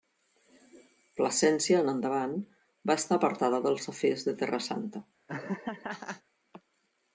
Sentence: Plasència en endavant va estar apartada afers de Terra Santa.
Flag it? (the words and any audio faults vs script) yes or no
yes